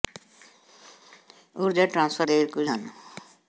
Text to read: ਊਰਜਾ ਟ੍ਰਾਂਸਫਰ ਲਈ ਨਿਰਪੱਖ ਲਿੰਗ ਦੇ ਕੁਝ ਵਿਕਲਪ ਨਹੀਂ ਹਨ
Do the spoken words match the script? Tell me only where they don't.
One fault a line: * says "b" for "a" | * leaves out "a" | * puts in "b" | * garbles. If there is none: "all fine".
* leaves out "ਲਈ ਨਿਰਪੱਖ ਲਿੰਗ"
* leaves out "ਵਿਕਲਪ ਨਹੀਂ"